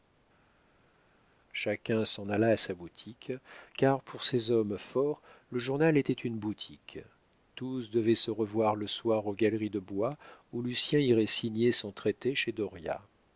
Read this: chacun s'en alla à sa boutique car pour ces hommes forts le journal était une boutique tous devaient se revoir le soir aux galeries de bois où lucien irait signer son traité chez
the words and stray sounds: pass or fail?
pass